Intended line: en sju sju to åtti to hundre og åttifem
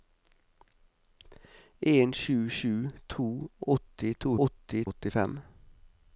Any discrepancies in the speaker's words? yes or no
yes